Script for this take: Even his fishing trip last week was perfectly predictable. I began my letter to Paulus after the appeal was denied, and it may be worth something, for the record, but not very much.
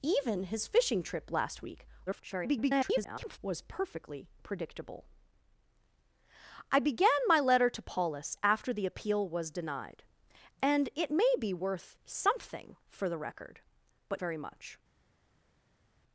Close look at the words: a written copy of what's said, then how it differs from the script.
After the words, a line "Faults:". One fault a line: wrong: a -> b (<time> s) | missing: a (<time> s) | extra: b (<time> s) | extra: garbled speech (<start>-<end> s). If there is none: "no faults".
Even his fishing trip last week [garbled] was perfectly predictable. I began my letter to Paulus after the appeal was denied, and it may be worth something, for the record, but very much.
Faults:
extra: garbled speech (2.1-3.4 s)
missing: not (14.2 s)